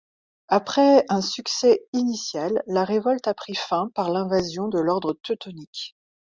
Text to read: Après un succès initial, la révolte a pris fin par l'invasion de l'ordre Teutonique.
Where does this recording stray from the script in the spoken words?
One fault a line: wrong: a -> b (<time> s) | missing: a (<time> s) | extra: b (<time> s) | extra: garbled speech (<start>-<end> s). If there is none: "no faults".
no faults